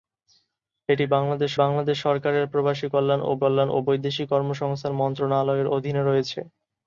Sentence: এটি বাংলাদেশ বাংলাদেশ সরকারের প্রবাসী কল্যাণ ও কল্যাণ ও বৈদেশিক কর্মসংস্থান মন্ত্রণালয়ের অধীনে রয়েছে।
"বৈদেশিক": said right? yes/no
yes